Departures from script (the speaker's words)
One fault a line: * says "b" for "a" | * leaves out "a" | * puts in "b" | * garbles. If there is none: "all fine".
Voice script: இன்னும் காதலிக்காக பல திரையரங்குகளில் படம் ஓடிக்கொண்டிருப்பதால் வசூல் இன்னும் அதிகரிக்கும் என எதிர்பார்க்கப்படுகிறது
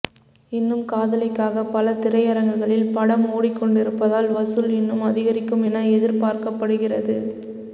all fine